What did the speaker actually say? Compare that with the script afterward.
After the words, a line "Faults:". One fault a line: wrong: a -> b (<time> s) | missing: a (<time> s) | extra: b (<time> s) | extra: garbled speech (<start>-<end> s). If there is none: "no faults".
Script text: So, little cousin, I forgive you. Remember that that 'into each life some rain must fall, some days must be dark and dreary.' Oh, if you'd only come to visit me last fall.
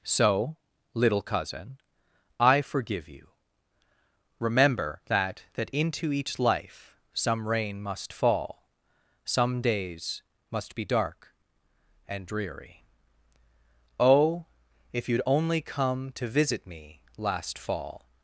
So, little cousin, I forgive you. Remember that that 'into each life some rain must fall, some days must be dark and dreary.' Oh, if you'd only come to visit me last fall.
Faults:
no faults